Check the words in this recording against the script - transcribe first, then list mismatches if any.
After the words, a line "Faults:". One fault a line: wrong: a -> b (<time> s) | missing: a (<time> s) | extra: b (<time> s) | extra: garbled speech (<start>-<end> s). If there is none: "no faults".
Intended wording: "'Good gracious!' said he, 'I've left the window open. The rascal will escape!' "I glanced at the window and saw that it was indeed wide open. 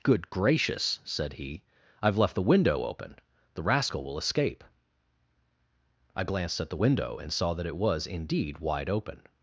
"'Good gracious!' said he, 'I've left the window open. The rascal will escape!' "I glanced at the window and saw that it was indeed wide open.
Faults:
no faults